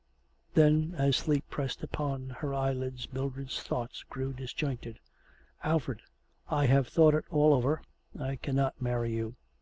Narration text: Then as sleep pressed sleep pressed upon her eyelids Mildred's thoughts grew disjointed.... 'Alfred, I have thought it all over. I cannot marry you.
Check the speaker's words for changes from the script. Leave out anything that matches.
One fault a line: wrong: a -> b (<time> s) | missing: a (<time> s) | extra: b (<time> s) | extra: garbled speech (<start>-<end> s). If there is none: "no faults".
missing: sleep pressed (1.8 s)